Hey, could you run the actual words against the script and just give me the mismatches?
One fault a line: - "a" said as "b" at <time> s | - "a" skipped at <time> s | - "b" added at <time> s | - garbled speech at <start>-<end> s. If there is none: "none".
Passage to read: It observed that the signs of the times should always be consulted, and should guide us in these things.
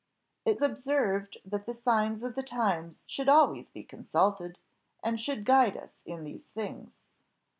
none